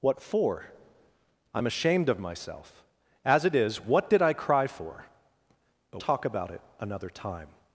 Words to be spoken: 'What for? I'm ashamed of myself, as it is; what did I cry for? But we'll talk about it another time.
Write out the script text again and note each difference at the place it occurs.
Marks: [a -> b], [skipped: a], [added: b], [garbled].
'What for? I'm ashamed of myself, as it is; what did I cry for? But [skipped: we'll] talk about it another time.